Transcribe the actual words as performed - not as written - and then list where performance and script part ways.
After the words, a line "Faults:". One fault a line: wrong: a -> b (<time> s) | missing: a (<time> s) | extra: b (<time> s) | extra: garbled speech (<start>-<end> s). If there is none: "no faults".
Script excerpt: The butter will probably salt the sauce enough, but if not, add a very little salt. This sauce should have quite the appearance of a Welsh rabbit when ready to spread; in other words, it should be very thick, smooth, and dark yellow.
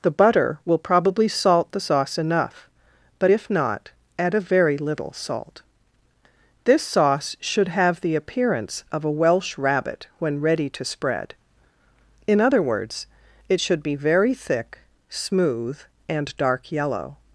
The butter will probably salt the sauce enough, but if not, add a very little salt. This sauce should have the appearance of a Welsh rabbit when ready to spread; in other words, it should be very thick, smooth, and dark yellow.
Faults:
missing: quite (8.0 s)